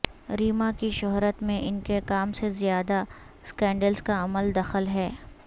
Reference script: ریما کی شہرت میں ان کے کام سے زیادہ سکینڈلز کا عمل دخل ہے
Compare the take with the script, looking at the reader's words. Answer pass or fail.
pass